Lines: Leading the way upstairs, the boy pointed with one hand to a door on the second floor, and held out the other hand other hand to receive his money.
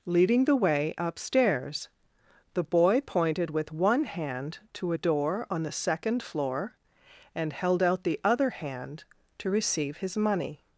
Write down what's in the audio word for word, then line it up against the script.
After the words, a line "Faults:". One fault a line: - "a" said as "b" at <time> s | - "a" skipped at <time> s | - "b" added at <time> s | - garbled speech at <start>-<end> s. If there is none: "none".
Leading the way upstairs, the boy pointed with one hand to a door on the second floor, and held out the other hand to receive his money.
Faults:
- "other hand" skipped at 9.0 s